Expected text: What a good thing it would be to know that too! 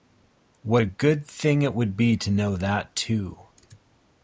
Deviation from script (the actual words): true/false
false